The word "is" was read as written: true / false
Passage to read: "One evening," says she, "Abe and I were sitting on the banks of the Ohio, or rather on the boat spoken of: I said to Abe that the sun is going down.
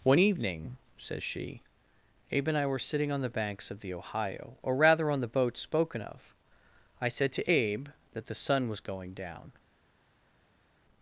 false